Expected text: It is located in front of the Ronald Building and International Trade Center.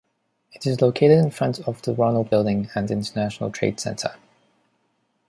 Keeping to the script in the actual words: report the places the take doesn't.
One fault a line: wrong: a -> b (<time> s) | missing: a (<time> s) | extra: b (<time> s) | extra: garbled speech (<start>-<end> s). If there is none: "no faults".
no faults